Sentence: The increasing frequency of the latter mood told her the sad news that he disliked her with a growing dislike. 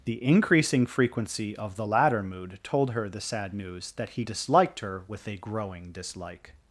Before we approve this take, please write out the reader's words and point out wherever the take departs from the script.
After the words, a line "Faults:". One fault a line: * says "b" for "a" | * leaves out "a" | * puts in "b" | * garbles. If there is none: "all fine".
The increasing frequency of the latter mood told her the sad news that he disliked her with a growing dislike.
Faults:
all fine